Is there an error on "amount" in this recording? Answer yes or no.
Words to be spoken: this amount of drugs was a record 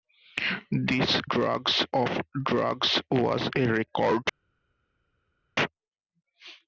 yes